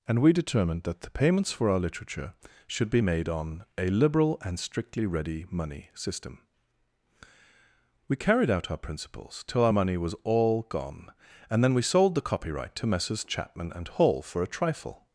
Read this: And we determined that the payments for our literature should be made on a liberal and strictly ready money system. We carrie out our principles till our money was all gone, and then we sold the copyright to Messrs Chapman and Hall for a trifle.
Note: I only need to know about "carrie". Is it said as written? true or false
false